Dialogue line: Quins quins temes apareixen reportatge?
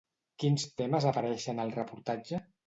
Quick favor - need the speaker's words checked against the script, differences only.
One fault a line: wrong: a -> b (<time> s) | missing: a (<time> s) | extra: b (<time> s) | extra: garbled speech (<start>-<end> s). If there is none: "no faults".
missing: quins (0.6 s)
extra: al (1.7 s)